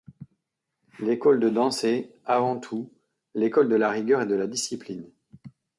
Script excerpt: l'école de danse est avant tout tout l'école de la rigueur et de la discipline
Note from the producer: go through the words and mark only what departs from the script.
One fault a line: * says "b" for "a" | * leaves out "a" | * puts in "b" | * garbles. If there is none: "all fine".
* leaves out "tout"